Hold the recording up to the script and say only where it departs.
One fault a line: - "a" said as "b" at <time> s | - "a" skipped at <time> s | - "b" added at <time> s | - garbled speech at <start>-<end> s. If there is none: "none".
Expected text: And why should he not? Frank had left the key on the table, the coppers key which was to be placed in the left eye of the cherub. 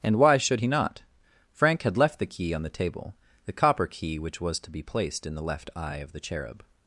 - "coppers" said as "copper" at 3.5 s